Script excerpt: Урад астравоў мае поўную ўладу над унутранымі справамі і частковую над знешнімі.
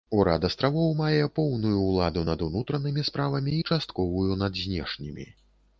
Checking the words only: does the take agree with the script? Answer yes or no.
yes